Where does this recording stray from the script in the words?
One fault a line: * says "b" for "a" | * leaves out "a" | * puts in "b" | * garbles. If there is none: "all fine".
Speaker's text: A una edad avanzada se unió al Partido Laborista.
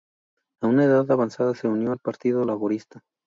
all fine